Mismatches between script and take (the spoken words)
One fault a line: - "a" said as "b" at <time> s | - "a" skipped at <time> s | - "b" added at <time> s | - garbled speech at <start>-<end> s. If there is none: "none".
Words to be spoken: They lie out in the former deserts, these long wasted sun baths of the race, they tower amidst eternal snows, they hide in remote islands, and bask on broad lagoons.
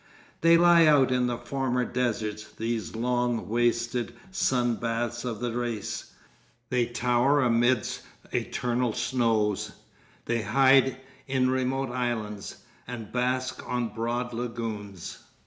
none